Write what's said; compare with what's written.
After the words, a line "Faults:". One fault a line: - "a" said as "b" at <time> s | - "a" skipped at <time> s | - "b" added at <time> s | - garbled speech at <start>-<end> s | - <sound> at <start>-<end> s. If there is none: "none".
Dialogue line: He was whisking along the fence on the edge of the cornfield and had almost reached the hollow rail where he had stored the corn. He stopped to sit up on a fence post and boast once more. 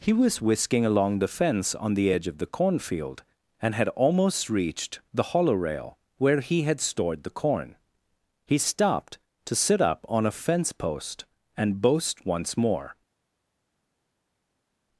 He was whisking along the fence on the edge of the cornfield and had almost reached the hollow rail where he had stored the corn. He stopped to sit up on a fence post and boast once more.
Faults:
none